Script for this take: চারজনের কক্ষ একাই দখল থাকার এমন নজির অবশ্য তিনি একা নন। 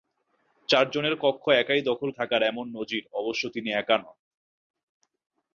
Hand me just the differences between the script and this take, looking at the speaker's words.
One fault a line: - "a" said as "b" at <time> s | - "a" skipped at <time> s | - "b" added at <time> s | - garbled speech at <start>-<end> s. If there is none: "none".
none